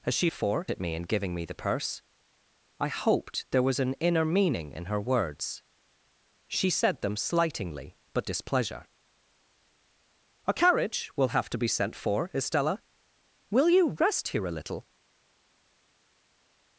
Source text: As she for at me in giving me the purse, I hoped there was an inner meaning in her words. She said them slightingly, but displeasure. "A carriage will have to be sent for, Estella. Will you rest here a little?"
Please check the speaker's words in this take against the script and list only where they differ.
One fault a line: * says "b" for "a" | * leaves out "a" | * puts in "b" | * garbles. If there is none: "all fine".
all fine